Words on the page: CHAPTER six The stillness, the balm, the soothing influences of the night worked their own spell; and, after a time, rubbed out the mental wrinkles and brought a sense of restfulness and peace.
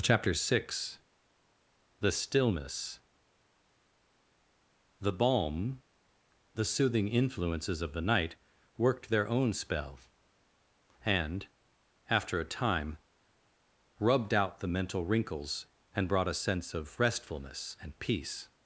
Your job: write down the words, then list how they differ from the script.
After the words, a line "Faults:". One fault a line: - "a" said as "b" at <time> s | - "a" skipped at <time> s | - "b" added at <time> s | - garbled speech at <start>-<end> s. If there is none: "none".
CHAPTER six The stillness, the balm, the soothing influences of the night worked their own spell; and, after a time, rubbed out the mental wrinkles and brought a sense of restfulness and peace.
Faults:
none